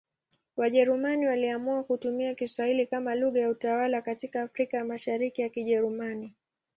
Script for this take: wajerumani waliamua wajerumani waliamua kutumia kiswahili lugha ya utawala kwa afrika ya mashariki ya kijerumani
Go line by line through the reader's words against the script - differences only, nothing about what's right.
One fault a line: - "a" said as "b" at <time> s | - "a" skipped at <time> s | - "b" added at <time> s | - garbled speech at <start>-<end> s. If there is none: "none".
- "wajerumani waliamua" skipped at 1.8 s
- "kama" added at 2.9 s
- "kwa" said as "katika" at 4.0 s